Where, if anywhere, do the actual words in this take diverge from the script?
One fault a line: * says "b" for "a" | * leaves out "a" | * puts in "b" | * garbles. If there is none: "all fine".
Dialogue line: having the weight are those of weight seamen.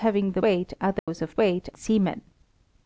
all fine